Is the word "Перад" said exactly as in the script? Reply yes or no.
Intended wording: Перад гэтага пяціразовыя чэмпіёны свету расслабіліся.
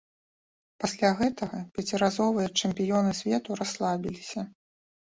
no